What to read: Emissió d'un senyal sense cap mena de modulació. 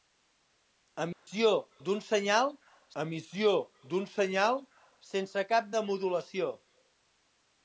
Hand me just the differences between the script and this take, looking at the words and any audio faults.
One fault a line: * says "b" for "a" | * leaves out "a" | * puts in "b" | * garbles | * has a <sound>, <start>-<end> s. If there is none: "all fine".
* has a dropout, 1.1-1.3 s
* puts in "emissió d'un senyal"
* leaves out "mena"